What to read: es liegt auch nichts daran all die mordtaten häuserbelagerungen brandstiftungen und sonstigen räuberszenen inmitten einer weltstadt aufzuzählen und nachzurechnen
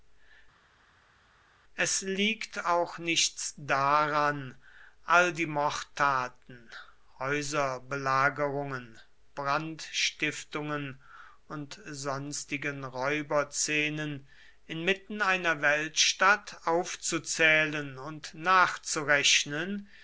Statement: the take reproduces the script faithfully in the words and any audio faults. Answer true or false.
true